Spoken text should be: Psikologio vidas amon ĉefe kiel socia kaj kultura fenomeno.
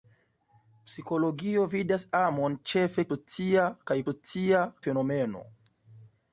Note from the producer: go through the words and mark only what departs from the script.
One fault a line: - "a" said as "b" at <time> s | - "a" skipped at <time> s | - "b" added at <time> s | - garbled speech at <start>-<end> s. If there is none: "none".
- "kiel" skipped at 3.1 s
- "kultura" said as "socia" at 4.1 s